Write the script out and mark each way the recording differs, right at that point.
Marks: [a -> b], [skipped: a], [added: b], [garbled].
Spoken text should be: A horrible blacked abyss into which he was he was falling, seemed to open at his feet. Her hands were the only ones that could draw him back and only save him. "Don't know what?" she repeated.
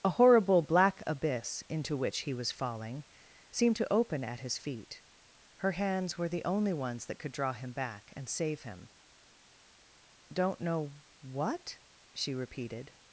A horrible [blacked -> black] abyss into which he was [skipped: he was] falling, seemed to open at his feet. Her hands were the only ones that could draw him back and [skipped: only] save him. "Don't know what?" she repeated.